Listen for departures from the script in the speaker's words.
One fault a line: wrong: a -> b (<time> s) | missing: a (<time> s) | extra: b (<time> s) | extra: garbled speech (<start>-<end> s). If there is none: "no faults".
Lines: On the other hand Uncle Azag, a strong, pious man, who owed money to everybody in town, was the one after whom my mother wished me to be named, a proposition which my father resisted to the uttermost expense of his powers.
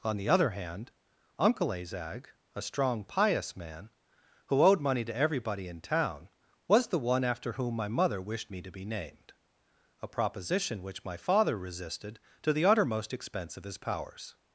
no faults